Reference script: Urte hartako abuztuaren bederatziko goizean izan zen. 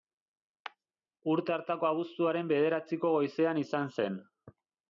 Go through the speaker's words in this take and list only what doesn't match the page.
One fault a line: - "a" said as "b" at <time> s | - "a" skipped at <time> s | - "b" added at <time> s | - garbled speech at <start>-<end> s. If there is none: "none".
none